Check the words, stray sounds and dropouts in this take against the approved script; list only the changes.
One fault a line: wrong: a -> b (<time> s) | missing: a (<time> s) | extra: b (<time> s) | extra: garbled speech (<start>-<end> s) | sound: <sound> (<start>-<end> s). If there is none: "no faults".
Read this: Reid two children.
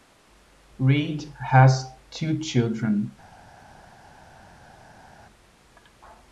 extra: has (1.5 s)